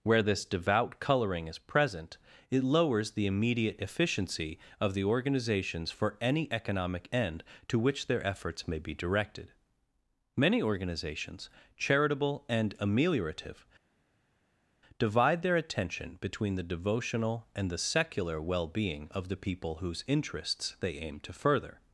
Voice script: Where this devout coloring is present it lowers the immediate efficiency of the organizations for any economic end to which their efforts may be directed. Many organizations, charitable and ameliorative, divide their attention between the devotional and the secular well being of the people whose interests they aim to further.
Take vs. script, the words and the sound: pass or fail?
pass